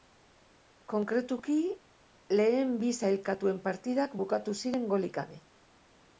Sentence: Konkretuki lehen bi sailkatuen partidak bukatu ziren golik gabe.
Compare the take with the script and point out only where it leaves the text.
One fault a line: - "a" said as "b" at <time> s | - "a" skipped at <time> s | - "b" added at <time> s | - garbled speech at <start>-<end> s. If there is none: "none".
none